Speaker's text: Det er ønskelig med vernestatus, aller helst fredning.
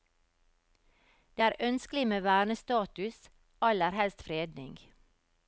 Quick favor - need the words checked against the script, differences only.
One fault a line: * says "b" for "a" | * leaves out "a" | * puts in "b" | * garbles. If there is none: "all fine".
all fine